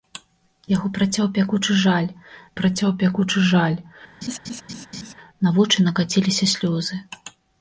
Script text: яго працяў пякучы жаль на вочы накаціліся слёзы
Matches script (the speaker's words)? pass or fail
fail